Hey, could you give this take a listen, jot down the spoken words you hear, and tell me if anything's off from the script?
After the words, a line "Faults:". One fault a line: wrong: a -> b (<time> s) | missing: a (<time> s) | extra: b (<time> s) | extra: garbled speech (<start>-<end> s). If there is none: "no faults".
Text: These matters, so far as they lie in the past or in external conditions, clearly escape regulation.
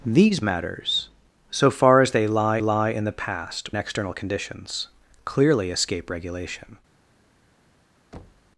These matters, so far as they lie lie in the past external conditions, clearly escape regulation.
Faults:
extra: lie (2.6 s)
missing: or in (3.7 s)